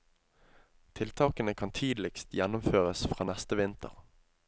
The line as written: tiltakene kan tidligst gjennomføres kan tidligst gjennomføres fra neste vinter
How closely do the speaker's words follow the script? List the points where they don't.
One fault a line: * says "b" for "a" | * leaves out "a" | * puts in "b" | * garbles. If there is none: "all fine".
* leaves out "kan tidligst gjennomføres"